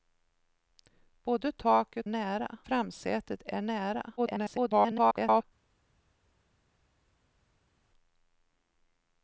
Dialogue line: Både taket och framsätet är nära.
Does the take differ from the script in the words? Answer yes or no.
yes